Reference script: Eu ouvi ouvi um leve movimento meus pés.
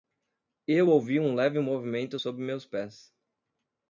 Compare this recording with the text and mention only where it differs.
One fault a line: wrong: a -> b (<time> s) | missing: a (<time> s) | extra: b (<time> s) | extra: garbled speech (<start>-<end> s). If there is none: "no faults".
missing: ouvi (1.2 s)
extra: sob (2.2 s)